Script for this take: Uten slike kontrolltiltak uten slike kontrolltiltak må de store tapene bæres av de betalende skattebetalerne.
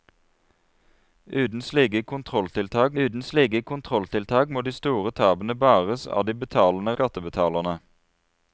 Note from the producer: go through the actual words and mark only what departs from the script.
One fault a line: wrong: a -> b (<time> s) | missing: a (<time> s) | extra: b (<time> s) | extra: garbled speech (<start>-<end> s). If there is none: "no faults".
no faults